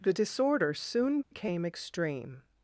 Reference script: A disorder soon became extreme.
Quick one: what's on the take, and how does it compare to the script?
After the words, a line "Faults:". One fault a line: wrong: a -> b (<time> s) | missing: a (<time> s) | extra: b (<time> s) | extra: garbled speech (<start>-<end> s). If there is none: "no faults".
The disorder soon became extreme.
Faults:
wrong: A -> The (0.0 s)